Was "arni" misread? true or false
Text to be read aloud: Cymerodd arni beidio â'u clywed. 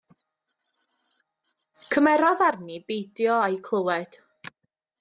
false